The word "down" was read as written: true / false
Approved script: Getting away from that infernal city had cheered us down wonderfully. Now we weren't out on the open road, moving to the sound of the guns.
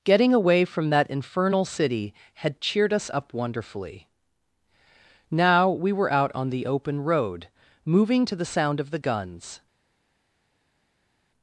false